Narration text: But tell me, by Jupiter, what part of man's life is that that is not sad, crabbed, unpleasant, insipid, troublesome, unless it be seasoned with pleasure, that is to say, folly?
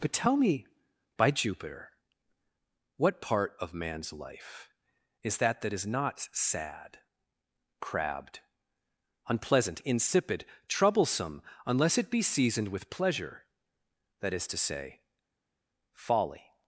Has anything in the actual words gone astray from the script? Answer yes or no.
no